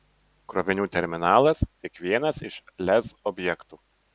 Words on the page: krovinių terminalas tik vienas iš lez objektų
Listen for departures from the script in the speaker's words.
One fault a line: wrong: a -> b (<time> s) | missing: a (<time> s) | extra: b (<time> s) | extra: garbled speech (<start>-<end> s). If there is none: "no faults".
no faults